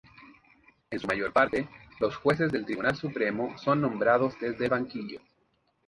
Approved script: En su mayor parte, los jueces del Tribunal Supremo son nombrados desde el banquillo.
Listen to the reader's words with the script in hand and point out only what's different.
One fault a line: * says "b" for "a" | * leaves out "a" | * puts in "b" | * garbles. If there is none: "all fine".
all fine